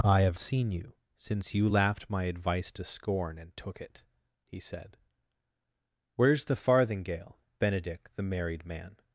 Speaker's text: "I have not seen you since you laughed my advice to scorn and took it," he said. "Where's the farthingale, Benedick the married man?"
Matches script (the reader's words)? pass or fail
fail